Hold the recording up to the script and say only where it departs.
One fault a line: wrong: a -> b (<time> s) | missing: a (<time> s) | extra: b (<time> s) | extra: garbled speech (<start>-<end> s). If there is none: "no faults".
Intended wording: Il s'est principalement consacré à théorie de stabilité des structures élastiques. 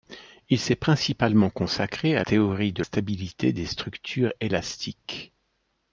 no faults